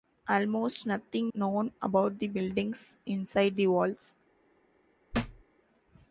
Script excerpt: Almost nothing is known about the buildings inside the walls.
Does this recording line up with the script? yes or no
no